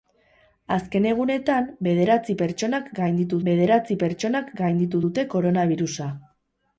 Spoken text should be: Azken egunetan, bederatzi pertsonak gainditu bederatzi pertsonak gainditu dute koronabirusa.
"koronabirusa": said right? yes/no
yes